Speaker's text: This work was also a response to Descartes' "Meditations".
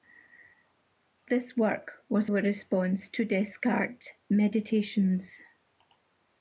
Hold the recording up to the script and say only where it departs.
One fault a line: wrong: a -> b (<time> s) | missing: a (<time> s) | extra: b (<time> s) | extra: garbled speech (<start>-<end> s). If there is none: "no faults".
missing: also (2.3 s)